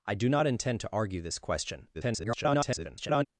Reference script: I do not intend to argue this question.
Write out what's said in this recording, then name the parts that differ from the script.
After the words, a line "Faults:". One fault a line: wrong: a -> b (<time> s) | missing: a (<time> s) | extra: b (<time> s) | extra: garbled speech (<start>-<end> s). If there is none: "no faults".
I do not intend to argue this question. [garbled]
Faults:
extra: garbled speech (1.9-3.3 s)